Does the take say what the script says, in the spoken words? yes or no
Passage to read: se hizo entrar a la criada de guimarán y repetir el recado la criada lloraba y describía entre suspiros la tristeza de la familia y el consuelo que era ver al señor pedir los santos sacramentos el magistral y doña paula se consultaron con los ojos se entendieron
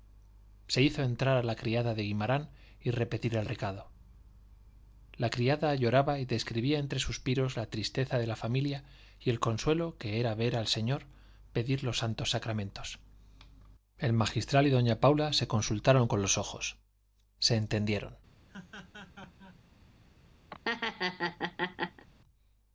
yes